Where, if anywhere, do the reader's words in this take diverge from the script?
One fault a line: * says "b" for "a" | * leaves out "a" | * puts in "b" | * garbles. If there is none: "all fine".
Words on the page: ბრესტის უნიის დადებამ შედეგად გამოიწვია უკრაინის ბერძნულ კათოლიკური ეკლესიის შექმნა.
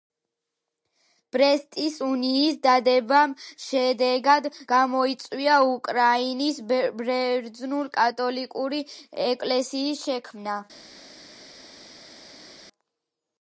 all fine